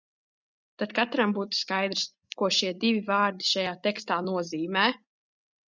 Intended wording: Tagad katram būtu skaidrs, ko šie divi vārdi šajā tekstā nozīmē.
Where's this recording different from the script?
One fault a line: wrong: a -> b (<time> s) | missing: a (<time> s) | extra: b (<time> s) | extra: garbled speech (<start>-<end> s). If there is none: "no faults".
wrong: Tagad -> Tad (0.8 s)